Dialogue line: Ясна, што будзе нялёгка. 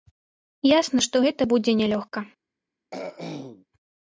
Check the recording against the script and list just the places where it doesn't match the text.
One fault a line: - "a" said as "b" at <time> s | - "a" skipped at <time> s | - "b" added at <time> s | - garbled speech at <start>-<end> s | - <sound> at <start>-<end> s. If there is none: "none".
- "гэта" added at 1.2 s
- throat clearing at 2.9-3.7 s